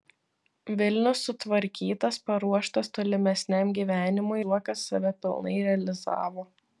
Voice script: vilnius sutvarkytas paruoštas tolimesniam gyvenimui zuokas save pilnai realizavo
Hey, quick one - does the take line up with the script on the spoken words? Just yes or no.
yes